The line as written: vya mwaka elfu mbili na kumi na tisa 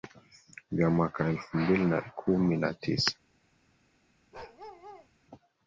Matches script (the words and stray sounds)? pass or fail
fail